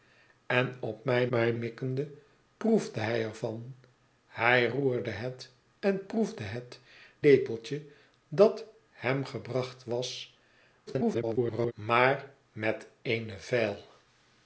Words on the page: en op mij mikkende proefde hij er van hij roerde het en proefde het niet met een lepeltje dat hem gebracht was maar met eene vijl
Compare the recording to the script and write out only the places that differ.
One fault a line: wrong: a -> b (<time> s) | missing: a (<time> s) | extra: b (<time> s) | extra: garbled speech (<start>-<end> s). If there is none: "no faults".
extra: mij (1.3 s)
missing: niet met een (6.8 s)
extra: garbled speech (10.9-11.7 s)